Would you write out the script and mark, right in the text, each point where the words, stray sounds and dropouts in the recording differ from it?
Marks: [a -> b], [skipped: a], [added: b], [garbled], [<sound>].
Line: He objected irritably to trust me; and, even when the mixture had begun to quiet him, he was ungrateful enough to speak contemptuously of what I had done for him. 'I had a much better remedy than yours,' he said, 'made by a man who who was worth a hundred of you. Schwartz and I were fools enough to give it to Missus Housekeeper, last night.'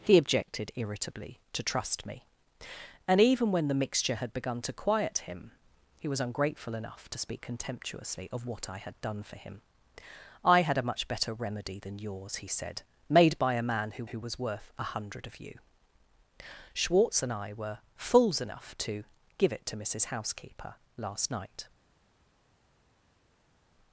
He objected irritably to trust me; and, even when the mixture had begun to quiet him, he was ungrateful enough to speak contemptuously of what I had done for him. 'I had a much better remedy than yours,' he said, 'made by a man who who was worth a hundred of you. Schwartz and I were fools enough to give it to Missus Housekeeper, last night.'